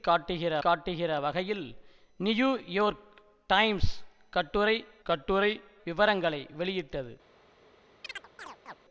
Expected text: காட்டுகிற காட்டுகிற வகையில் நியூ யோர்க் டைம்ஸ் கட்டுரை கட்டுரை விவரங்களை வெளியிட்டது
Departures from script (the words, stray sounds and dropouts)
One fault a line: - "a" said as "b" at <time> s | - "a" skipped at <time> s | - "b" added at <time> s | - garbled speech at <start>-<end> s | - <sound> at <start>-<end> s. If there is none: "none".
- chirp at 8.0-8.8 s